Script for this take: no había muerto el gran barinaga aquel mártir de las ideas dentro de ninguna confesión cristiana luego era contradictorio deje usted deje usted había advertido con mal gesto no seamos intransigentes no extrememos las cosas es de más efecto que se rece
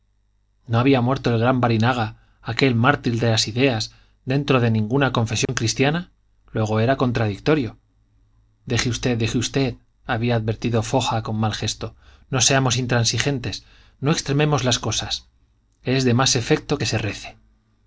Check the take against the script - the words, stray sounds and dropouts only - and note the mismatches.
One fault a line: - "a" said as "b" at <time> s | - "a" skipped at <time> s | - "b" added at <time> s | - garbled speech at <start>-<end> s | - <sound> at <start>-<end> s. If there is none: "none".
- dropout at 5.5-5.5 s
- "foja" added at 10.8 s